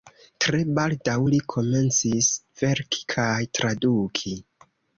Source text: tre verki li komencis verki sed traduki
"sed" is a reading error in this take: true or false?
true